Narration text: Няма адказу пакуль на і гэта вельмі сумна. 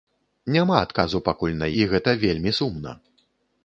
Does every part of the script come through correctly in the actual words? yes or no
yes